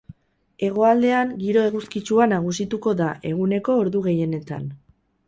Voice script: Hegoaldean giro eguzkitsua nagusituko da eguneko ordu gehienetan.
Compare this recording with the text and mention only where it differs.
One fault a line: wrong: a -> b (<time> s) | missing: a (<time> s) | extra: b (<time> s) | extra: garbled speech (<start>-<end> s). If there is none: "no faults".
no faults